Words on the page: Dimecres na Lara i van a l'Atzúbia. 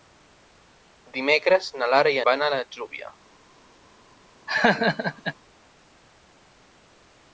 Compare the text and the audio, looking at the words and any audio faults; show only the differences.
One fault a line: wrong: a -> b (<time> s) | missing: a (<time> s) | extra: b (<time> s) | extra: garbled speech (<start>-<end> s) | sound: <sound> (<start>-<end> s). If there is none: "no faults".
sound: laugh (4.5-5.4 s)